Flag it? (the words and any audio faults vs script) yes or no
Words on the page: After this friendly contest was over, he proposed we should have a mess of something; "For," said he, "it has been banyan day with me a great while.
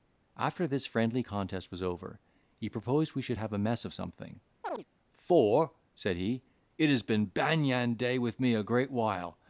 yes